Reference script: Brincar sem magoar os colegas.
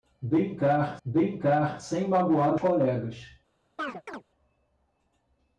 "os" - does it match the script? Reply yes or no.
no